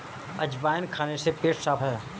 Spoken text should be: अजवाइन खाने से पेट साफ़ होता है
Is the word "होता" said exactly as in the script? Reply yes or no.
no